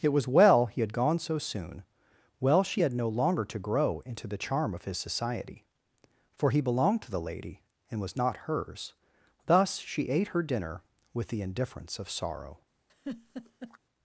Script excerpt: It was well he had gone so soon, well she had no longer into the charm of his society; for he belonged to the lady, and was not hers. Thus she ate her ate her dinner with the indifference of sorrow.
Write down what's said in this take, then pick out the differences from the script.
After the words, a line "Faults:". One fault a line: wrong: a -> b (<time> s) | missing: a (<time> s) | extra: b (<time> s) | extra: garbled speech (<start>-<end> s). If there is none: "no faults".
It was well he had gone so soon, well she had no longer to grow into the charm of his society; for he belonged to the lady, and was not hers. Thus she ate her dinner with the indifference of sorrow.
Faults:
extra: to grow (3.5 s)
missing: ate her (10.4 s)